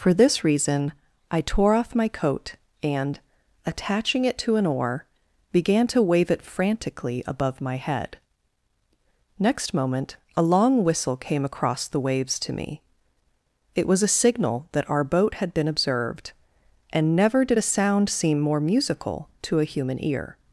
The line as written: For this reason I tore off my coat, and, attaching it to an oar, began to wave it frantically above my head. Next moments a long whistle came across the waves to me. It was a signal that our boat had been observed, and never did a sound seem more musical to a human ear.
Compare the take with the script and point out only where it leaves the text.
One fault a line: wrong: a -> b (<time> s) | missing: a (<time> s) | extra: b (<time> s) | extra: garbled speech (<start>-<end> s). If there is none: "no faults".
wrong: moments -> moment (9.8 s)